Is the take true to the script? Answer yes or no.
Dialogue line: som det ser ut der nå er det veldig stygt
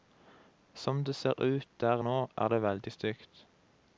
yes